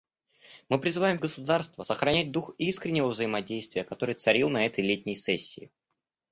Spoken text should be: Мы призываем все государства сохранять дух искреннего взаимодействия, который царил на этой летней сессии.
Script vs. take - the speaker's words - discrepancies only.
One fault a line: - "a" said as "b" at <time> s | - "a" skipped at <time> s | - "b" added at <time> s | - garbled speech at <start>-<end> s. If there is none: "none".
- "все" skipped at 1.2 s